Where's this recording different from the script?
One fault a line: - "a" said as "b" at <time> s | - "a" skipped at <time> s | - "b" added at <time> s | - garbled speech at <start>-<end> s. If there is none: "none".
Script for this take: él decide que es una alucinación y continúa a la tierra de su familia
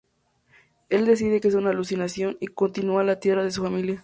none